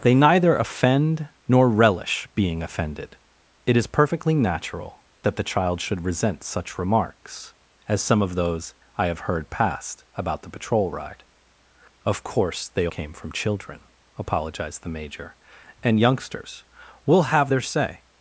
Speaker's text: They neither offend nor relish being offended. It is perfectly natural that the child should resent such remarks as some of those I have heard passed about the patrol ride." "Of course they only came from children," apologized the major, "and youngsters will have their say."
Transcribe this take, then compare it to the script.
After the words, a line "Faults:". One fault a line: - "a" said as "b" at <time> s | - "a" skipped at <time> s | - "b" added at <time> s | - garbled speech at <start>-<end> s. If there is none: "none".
They neither offend nor relish being offended. It is perfectly natural that the child should resent such remarks as some of those I have heard passed about the patrol ride." "Of course they came from children," apologized the major, "and youngsters will have their say."
Faults:
- "only" skipped at 12.9 s